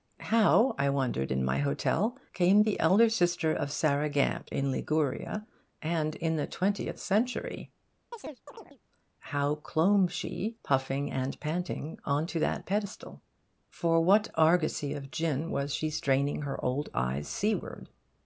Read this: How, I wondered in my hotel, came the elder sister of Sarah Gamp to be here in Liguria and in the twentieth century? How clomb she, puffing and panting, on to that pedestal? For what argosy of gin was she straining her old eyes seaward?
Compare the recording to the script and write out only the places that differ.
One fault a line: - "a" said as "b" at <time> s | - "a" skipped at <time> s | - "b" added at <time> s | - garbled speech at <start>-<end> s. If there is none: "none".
- "to be here" skipped at 4.5 s